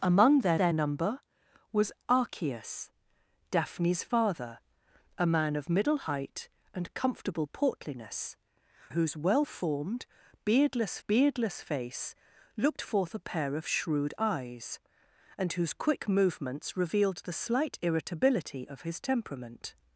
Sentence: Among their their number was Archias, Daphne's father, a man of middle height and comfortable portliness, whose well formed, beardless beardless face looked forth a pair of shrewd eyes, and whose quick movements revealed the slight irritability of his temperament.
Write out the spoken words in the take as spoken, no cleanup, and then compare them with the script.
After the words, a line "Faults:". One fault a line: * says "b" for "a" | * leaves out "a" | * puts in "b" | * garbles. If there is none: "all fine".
Among their their number was Archias, Daphne's father, a man of middle height and comfortable portliness, whose well formed, beardless beardless face looked forth a pair of shrewd eyes, and whose quick movements revealed the slight irritability of his temperament.
Faults:
all fine